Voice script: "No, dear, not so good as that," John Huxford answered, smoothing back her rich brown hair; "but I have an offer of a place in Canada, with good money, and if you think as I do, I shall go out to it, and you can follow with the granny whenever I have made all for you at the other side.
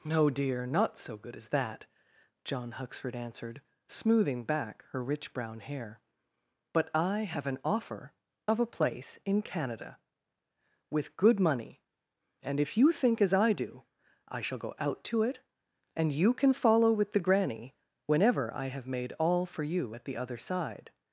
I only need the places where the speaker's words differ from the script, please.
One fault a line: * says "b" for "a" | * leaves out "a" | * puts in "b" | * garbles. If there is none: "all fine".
all fine